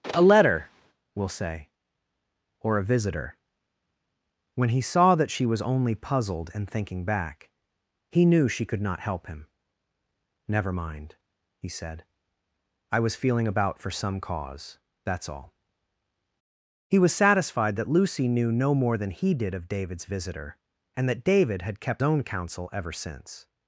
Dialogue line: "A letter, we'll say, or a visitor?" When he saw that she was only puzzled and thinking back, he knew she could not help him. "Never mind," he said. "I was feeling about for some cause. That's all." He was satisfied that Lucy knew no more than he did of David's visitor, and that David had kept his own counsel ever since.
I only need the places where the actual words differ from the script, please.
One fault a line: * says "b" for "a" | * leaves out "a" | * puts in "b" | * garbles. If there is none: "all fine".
* leaves out "his"